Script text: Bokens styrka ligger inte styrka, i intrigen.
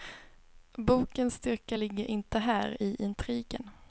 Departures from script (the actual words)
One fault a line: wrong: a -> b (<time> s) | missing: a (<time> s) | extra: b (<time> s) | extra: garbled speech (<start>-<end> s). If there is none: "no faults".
wrong: styrka -> här (2.4 s)